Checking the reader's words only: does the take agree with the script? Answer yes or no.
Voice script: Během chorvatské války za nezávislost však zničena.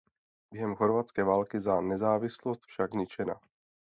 yes